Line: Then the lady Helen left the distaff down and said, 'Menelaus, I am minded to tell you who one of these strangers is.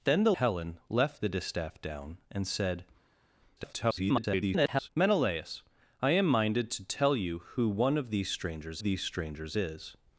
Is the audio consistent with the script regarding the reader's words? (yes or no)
no